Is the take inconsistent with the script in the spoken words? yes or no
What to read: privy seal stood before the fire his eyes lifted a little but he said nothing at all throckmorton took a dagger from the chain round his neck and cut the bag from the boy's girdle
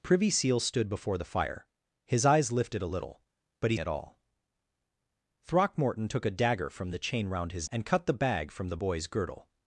yes